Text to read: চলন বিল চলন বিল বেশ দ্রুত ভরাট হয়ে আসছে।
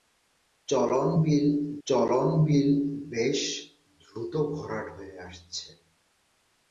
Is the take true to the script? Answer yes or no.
yes